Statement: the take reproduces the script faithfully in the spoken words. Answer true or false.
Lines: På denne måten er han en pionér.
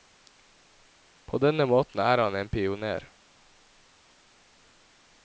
true